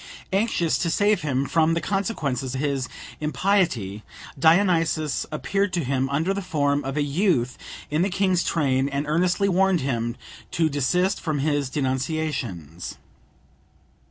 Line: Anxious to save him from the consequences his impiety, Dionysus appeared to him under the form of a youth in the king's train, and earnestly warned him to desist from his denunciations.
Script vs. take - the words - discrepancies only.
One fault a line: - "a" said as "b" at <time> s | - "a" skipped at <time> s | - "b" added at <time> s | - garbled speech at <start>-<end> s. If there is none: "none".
none